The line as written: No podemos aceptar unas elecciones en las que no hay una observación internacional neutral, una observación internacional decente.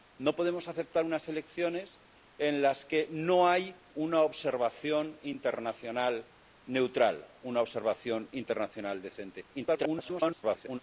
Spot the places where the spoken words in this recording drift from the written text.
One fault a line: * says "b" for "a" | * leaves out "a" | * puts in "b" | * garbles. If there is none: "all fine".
* garbles